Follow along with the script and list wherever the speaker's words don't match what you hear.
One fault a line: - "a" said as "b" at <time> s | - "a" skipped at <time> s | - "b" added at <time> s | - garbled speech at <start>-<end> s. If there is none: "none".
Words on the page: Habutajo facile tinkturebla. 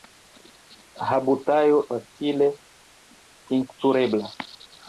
none